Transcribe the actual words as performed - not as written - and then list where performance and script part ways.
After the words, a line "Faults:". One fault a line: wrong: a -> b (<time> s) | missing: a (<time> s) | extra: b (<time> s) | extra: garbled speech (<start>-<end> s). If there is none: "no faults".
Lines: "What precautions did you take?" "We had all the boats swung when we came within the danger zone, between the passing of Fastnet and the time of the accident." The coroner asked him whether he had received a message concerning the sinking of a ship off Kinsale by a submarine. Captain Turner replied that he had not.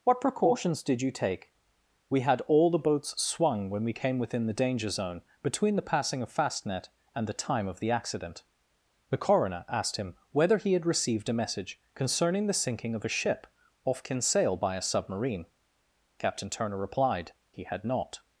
"What precautions did you take?" "We had all the boats swung when we came within the danger zone, between the passing of Fastnet and the time of the accident." The coroner asked him whether he had received a message concerning the sinking of a ship off Kinsale by a submarine. Captain Turner replied he had not.
Faults:
missing: that (17.3 s)